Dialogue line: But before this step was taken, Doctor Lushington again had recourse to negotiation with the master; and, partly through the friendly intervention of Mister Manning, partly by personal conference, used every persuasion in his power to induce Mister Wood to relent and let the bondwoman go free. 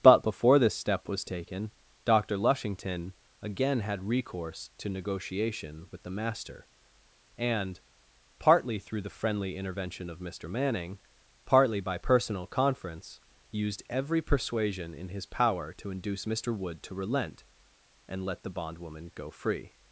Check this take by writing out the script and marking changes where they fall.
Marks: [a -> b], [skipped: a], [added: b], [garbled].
But before this step was taken, Doctor Lushington again had recourse to negotiation with the master; and, partly through the friendly intervention of Mister Manning, partly by personal conference, used every persuasion in his power to induce Mister Wood to relent and let the bondwoman go free.